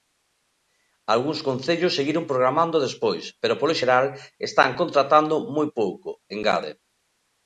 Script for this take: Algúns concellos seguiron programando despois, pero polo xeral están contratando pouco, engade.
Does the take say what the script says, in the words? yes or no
no